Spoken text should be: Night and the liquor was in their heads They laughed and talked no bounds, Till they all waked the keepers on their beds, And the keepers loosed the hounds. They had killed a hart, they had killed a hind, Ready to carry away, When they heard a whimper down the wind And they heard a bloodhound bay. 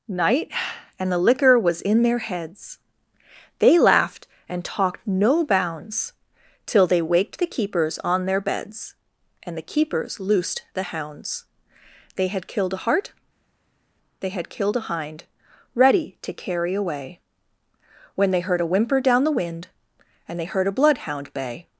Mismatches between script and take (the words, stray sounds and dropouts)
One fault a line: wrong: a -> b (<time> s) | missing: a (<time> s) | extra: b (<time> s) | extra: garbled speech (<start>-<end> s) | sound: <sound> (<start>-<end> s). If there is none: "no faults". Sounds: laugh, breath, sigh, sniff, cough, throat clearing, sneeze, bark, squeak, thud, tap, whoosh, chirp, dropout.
missing: all (7.0 s)